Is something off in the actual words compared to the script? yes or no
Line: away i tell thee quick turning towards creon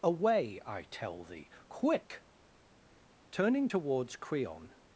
no